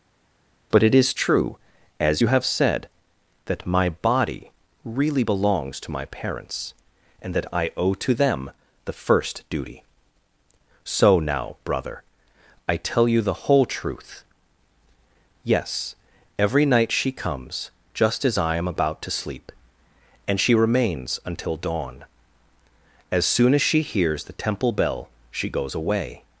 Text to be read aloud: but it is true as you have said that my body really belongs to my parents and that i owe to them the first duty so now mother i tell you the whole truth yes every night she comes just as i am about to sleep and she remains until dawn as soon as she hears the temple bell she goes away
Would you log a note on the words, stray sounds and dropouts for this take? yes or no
yes